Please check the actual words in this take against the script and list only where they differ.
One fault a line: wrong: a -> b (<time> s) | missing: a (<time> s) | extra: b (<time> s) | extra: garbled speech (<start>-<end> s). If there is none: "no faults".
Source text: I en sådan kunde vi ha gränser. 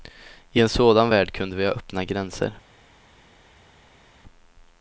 extra: värld (1.1 s)
extra: öppna (1.7 s)